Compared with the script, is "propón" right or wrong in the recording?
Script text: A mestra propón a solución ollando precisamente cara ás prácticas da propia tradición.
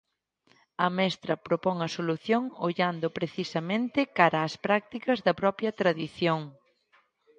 right